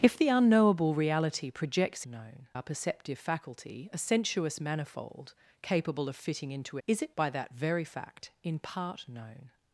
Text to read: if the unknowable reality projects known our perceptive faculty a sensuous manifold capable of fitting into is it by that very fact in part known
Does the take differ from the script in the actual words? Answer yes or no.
no